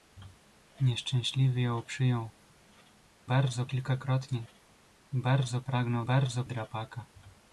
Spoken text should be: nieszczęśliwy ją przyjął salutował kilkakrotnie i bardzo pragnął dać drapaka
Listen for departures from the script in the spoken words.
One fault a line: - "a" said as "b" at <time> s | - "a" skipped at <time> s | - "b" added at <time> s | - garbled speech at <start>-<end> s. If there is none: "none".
- "salutował" said as "bardzo" at 3.2 s
- "dać" said as "bardzo" at 6.0 s